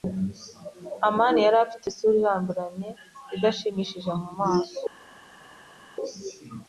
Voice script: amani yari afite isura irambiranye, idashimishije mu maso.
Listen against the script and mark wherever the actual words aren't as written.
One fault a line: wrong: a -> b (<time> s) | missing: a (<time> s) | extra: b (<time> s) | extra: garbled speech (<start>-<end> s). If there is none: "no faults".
no faults